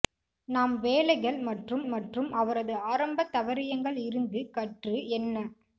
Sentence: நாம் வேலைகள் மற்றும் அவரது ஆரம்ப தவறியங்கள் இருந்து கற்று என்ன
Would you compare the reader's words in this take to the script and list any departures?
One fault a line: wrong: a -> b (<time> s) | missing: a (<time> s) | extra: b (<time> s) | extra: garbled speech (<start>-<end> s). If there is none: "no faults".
extra: மற்றும் (1.9 s)